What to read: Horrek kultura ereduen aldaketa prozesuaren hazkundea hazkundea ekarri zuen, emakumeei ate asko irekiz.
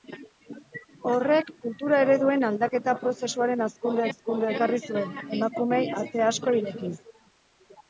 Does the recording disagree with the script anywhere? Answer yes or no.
no